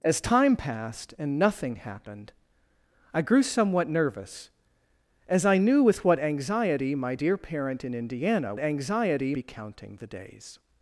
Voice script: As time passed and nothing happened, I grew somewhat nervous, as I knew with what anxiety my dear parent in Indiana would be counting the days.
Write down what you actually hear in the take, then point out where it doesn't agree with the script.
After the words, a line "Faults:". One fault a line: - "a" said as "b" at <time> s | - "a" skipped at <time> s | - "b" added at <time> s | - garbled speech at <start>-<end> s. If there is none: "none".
As time passed and nothing happened, I grew somewhat nervous, as I knew with what anxiety my dear parent in Indiana anxiety be counting the days.
Faults:
- "would" said as "anxiety" at 8.6 s